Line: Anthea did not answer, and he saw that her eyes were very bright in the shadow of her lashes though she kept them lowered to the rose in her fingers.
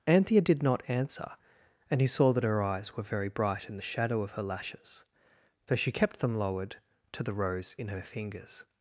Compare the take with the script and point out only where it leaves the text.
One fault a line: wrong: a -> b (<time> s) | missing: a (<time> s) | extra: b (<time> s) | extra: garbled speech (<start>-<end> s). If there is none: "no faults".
no faults